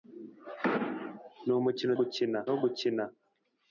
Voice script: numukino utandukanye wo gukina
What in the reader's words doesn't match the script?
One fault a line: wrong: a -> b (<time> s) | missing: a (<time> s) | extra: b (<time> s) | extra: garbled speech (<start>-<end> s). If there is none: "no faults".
wrong: utandukanye -> gukina (2.0 s)